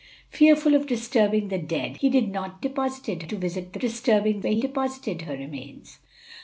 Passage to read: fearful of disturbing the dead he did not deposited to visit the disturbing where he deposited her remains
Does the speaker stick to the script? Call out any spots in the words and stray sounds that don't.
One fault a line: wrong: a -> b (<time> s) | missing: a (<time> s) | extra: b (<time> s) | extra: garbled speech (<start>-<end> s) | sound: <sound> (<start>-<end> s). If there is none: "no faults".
no faults